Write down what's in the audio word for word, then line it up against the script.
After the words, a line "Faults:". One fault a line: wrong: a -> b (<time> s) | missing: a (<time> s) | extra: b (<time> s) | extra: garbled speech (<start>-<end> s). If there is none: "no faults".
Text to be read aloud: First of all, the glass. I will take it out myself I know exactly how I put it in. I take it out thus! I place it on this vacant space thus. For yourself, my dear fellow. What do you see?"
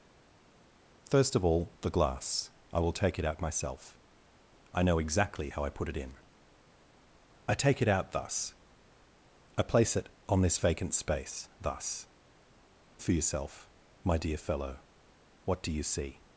First of all, the glass. I will take it out myself I know exactly how I put it in. I take it out thus! I place it on this vacant space thus. For yourself, my dear fellow. What do you see?"
Faults:
no faults